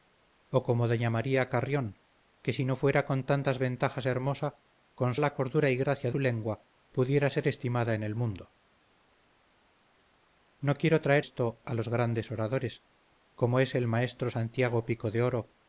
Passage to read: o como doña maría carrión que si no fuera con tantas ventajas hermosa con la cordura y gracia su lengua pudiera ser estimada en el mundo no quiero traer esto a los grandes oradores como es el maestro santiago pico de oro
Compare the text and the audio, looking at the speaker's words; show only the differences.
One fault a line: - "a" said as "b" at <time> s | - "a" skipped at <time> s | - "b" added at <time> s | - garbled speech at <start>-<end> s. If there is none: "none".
none